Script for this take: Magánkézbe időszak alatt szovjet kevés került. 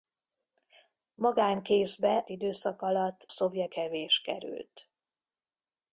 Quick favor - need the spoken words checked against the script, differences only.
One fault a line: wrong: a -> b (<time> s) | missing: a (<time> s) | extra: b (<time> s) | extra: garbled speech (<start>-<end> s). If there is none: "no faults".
no faults